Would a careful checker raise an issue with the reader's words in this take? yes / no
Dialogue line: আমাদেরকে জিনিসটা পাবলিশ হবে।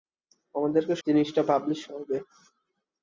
no